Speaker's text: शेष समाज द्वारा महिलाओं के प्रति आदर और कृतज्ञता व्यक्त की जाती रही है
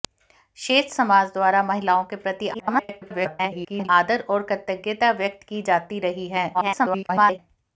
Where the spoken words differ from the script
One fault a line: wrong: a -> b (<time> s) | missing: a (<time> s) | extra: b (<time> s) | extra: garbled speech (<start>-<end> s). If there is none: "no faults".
extra: garbled speech (2.5-3.9 s)
extra: garbled speech (6.5-7.4 s)